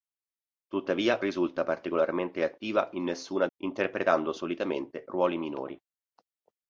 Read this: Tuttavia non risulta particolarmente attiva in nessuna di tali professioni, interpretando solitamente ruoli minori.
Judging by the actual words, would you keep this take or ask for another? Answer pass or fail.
fail